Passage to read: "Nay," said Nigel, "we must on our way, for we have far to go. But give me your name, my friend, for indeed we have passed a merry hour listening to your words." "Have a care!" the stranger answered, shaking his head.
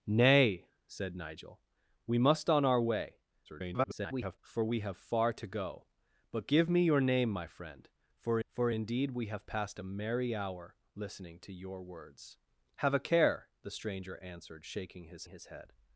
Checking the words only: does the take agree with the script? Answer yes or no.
no